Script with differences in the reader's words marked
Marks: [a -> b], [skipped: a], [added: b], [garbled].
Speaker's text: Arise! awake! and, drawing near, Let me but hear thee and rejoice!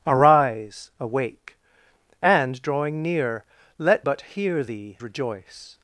Arise! awake! and, drawing near, Let [skipped: me] but hear thee [skipped: and] rejoice!